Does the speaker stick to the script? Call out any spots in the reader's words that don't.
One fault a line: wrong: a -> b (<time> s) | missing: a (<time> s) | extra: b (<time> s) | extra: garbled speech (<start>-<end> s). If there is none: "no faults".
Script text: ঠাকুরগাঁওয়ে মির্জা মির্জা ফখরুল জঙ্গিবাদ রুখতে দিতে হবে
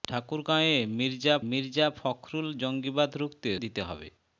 no faults